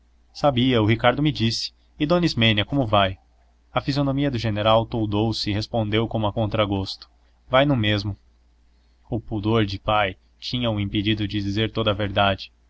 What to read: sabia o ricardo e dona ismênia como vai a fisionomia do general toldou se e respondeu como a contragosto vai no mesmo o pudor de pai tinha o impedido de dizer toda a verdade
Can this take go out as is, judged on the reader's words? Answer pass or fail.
fail